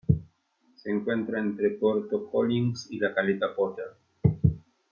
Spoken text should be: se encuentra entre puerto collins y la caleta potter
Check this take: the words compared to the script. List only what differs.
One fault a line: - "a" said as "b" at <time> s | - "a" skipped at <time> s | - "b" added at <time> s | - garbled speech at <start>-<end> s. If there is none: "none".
none